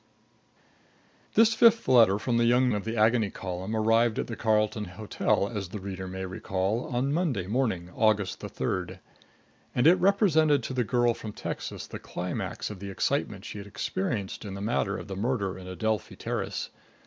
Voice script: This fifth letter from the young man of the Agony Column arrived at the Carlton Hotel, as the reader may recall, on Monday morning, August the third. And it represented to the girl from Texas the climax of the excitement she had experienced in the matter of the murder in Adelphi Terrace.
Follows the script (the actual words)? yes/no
no